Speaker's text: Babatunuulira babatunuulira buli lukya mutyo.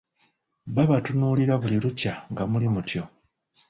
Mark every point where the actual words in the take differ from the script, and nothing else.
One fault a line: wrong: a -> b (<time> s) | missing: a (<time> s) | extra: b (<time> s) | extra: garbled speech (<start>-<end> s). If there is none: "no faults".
missing: babatunuulira (1.5 s)
extra: nga muli (2.3 s)